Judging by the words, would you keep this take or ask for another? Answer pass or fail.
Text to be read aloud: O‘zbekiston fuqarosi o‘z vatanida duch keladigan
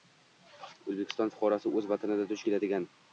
pass